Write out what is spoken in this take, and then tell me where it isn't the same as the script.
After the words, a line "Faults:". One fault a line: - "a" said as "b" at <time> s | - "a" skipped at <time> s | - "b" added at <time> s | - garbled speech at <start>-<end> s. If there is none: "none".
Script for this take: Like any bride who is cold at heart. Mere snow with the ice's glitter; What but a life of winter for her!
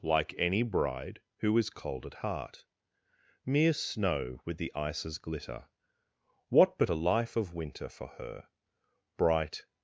Like any bride who is cold at heart. Mere snow with the ice's glitter; What but a life of winter for her! Bright
Faults:
- "Bright" added at 9.2 s